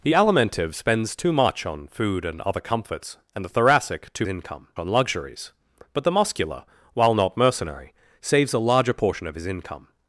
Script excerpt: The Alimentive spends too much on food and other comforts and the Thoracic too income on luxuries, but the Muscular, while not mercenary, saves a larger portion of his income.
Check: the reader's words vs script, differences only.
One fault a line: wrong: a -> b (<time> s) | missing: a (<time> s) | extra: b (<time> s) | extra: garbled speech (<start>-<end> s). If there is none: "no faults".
no faults